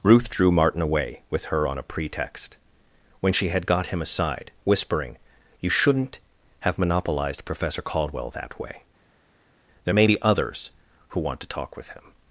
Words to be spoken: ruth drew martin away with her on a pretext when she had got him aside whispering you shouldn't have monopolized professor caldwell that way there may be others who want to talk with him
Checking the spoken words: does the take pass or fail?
pass